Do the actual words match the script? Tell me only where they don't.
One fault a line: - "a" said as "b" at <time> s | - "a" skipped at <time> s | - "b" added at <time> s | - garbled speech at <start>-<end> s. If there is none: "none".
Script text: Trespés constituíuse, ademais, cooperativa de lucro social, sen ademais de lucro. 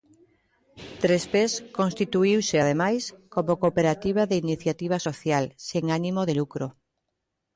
- "como" added at 3.3 s
- "lucro" said as "iniciativa" at 4.4 s
- "ademais" said as "ánimo" at 6.0 s